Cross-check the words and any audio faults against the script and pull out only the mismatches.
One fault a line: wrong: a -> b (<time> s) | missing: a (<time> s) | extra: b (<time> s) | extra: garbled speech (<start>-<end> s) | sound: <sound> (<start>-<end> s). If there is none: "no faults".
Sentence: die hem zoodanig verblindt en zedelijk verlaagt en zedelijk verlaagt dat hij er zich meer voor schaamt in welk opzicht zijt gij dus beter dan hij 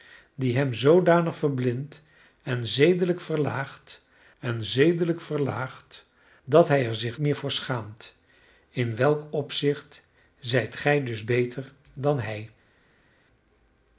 no faults